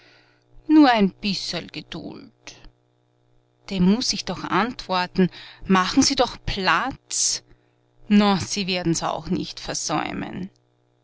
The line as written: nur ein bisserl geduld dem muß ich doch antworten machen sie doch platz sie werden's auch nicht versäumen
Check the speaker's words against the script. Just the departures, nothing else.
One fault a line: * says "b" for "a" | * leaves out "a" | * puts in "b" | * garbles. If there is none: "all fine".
* puts in "na"